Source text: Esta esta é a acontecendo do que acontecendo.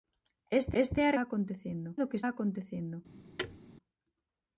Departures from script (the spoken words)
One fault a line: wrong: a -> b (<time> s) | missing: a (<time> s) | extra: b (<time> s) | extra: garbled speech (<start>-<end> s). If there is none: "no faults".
no faults